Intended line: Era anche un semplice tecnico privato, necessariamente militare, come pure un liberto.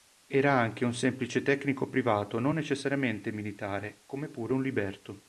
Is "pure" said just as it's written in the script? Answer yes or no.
yes